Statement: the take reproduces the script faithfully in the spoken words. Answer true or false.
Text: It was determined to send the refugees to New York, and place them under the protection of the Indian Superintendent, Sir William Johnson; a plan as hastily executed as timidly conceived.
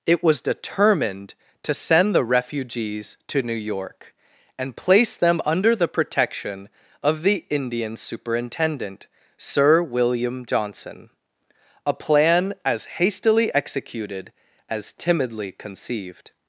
true